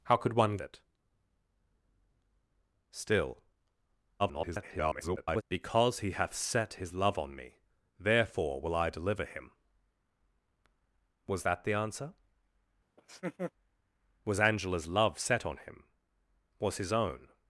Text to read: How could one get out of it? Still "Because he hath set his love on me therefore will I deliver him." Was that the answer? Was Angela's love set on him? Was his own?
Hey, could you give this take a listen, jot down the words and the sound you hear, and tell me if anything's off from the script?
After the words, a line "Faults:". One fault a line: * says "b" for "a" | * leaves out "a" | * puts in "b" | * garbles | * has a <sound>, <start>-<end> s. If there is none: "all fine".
How could one it? Still [garbled] "Because he hath set his love on me therefore will I deliver him." Was that the answer? Was Angela's love set on him? Was his own?
Faults:
* leaves out "get out of"
* garbles
* has a laugh, 13.0-13.5 s